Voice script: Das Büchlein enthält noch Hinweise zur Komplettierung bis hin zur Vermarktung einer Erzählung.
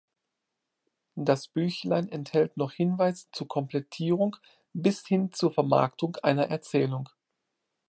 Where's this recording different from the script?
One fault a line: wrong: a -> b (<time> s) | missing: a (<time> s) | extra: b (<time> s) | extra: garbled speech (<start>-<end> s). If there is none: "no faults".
no faults